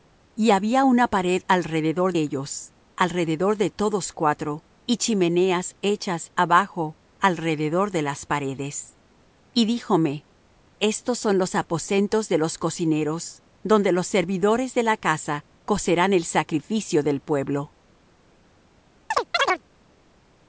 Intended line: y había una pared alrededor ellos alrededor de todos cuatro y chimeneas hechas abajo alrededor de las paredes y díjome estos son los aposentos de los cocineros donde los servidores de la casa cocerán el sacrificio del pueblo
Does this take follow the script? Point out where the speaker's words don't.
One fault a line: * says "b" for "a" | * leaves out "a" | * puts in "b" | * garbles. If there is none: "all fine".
all fine